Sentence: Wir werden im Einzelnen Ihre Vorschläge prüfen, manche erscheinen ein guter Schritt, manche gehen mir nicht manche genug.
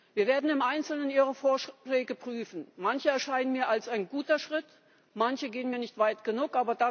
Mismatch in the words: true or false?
true